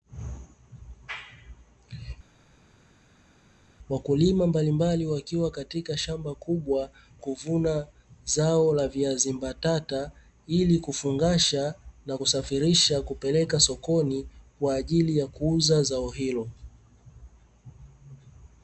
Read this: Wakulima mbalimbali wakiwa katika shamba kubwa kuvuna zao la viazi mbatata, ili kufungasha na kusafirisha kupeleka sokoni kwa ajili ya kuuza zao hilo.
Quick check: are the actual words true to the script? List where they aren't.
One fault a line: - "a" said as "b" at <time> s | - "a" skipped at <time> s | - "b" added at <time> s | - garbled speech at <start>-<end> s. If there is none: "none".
none